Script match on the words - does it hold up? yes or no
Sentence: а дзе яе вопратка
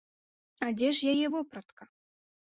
no